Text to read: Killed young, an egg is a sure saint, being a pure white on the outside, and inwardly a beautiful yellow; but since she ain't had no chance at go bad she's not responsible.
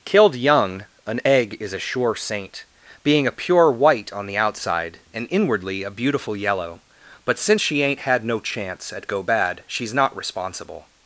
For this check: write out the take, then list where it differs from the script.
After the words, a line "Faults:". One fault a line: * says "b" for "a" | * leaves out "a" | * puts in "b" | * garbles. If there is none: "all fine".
Killed young, an egg is a sure saint, being a pure white on the outside, and inwardly a beautiful yellow; but since she ain't had no chance at go bad she's not responsible.
Faults:
all fine